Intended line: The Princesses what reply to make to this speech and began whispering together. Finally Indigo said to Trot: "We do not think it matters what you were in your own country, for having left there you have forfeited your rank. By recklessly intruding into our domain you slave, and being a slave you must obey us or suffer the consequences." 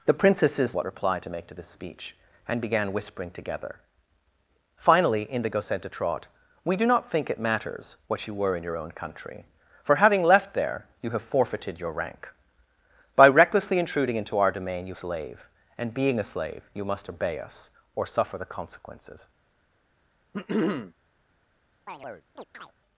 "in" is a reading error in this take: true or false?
false